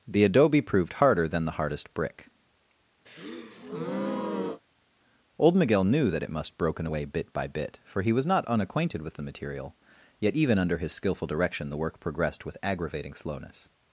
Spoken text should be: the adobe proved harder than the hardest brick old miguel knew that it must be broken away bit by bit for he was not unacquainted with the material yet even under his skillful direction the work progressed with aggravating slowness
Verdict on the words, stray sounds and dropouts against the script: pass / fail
fail